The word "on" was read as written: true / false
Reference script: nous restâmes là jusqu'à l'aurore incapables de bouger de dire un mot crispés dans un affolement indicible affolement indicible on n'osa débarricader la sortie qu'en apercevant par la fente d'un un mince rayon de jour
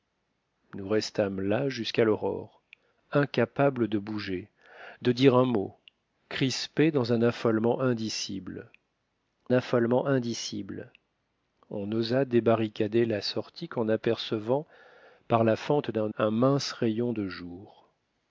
true